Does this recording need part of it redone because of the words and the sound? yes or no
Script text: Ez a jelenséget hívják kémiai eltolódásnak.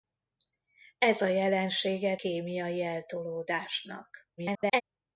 yes